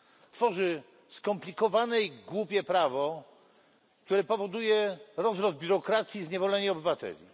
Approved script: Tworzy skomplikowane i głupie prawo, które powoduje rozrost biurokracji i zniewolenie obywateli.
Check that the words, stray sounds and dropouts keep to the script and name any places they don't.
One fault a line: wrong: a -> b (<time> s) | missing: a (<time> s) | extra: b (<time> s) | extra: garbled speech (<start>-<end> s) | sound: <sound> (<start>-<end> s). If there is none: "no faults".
no faults